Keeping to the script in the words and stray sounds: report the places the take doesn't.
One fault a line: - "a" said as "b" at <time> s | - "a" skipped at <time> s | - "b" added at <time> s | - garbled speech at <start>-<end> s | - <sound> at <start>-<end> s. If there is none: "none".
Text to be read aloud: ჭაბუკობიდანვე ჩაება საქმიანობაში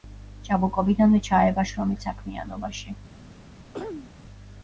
- "შრომით" added at 1.7 s
- throat clearing at 3.7-4.1 s